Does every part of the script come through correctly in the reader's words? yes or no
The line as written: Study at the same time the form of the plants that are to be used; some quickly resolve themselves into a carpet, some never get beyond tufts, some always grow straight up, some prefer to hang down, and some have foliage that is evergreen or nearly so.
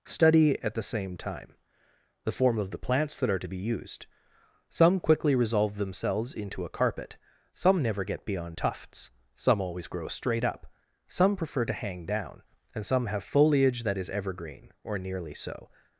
yes